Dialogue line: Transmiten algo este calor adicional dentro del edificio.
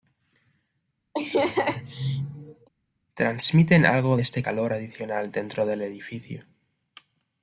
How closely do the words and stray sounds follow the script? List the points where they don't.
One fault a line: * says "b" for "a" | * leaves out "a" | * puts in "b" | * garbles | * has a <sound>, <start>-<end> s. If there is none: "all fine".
* has a laugh, 1.1-2.7 s